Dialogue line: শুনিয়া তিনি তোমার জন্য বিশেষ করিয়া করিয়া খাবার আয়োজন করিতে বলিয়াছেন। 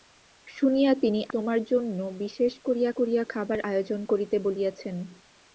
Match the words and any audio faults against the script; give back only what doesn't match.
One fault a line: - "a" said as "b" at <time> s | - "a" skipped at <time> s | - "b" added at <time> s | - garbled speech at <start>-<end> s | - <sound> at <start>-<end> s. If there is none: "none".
none